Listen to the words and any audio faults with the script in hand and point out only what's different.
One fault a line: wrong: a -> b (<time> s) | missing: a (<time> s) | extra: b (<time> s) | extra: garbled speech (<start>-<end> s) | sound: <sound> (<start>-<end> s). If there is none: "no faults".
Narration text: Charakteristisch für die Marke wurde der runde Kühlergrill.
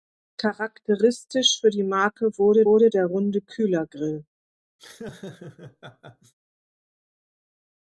extra: wurde (2.6 s)
sound: laugh (4.8-6.3 s)